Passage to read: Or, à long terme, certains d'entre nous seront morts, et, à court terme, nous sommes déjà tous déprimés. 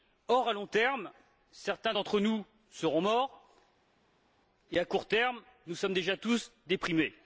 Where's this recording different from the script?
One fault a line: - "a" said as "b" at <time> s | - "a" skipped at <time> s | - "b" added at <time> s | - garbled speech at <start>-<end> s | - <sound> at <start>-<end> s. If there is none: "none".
none